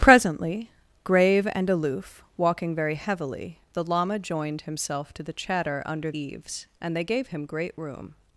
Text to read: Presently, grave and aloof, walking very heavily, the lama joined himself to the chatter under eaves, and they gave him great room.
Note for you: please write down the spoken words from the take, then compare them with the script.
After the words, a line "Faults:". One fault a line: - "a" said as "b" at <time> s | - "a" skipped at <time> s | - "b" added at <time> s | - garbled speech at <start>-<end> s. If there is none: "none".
Presently, grave and aloof, walking very heavily, the lama joined himself to the chatter under eaves, and they gave him great room.
Faults:
none